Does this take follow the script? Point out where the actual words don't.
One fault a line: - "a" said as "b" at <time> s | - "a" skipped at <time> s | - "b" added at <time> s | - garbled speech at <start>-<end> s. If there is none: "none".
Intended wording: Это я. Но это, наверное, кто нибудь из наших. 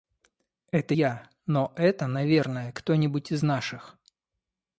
none